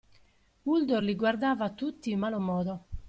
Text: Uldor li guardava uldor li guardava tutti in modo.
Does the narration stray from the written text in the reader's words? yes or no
yes